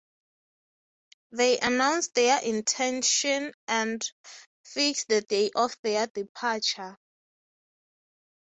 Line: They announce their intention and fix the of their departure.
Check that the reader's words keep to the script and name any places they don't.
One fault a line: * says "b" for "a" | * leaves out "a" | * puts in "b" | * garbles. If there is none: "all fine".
* puts in "day"